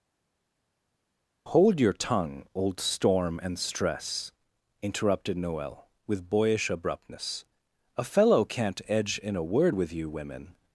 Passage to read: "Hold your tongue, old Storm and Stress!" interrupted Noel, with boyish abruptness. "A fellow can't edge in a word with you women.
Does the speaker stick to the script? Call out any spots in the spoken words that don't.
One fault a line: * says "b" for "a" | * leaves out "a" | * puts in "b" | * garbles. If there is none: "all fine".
all fine